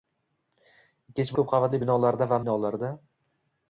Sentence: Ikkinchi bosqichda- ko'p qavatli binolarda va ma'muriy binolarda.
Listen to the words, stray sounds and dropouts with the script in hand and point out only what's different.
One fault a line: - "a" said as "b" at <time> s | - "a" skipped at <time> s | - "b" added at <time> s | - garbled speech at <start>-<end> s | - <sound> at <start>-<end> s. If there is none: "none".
- "bosqichda" skipped at 1.4 s
- "ma'muriy" skipped at 2.4 s